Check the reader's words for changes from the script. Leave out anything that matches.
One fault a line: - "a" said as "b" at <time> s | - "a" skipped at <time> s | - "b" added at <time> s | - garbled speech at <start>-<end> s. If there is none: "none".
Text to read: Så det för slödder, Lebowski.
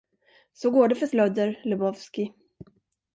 - "går" added at 0.7 s